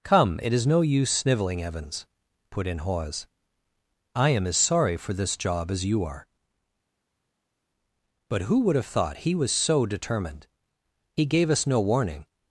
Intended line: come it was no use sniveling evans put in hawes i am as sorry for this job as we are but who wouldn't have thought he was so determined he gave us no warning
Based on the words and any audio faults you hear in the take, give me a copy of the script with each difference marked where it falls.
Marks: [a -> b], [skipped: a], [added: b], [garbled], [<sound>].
come it [was -> is] no use sniveling evans put in hawes i am as sorry for this job as [we -> you] are but who [wouldn't -> would] have thought he was so determined he gave us no warning